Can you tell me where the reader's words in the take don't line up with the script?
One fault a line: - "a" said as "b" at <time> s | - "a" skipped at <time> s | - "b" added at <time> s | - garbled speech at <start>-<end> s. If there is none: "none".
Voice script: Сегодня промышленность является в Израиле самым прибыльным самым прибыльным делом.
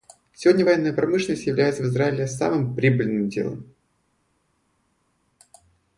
- "военная" added at 0.6 s
- "самым прибыльным" skipped at 3.3 s